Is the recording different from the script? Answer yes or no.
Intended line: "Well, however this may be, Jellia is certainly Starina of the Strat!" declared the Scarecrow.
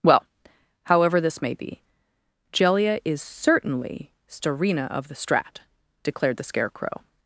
no